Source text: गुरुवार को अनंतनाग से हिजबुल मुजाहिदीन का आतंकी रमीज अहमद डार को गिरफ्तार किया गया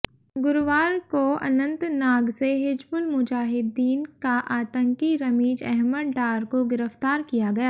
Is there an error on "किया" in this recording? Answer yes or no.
no